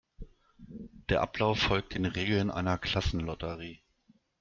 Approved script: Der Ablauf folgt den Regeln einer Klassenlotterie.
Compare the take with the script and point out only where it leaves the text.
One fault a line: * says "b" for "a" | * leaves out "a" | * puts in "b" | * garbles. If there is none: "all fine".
all fine